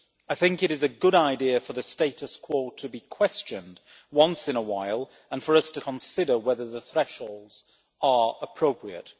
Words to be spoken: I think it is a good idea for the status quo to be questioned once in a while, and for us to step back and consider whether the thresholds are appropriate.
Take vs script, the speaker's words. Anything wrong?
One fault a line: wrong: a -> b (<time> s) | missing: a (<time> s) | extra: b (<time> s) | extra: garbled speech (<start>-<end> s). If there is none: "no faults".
missing: step back and (5.8 s)